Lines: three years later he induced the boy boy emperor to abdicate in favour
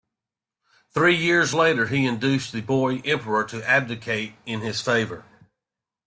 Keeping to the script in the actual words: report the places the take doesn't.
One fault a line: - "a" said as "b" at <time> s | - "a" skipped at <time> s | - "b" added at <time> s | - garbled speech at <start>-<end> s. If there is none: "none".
- "boy" skipped at 3.0 s
- "his" added at 4.6 s